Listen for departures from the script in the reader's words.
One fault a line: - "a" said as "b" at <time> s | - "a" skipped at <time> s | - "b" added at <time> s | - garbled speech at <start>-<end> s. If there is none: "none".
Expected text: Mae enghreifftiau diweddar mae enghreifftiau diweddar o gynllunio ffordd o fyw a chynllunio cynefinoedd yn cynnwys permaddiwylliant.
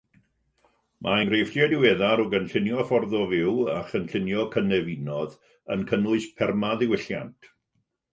- "mae enghreifftiau diweddar" skipped at 2.2 s